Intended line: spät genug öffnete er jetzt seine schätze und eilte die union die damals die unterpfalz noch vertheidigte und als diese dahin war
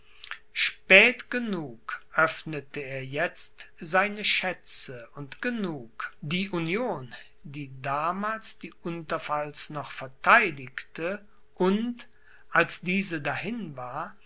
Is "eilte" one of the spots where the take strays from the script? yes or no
yes